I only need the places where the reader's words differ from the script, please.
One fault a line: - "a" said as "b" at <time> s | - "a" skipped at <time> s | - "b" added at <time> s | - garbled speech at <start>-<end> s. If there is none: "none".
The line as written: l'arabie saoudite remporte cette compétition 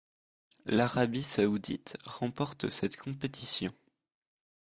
none